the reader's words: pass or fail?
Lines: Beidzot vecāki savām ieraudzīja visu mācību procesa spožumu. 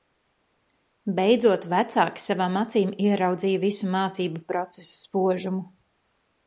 fail